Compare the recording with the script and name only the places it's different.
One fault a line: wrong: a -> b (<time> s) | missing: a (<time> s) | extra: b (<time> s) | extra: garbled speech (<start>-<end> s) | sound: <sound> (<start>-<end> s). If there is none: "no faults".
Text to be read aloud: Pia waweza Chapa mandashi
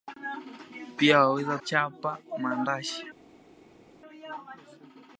no faults